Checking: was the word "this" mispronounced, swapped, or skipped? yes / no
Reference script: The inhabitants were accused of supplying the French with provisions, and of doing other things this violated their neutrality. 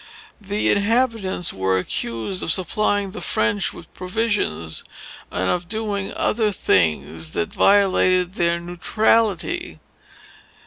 yes